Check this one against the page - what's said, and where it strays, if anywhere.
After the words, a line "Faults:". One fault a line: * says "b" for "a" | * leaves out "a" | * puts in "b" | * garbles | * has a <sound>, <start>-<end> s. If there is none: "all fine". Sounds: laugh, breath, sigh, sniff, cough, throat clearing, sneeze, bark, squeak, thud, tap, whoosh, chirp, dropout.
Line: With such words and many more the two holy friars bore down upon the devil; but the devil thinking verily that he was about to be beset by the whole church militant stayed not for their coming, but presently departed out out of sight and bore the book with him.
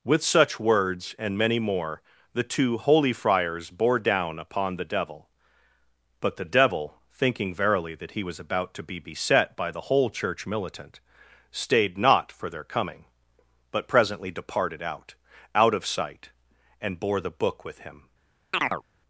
With such words and many more the two holy friars bore down upon the devil; but the devil thinking verily that he was about to be beset by the whole church militant stayed not for their coming, but presently departed out out of sight and bore the book with him.
Faults:
* has a chirp, 18.5-18.8 s